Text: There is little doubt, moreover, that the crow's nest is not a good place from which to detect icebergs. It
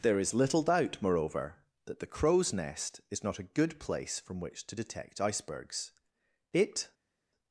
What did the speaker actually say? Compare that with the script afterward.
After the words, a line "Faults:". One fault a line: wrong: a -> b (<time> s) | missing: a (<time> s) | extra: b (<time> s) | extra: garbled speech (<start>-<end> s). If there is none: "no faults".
There is little doubt, moreover, that the crow's nest is not a good place from which to detect icebergs. It
Faults:
no faults